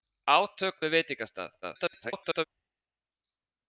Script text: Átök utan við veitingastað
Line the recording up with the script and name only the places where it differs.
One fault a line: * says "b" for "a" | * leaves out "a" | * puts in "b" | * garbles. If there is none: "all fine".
* leaves out "utan"
* garbles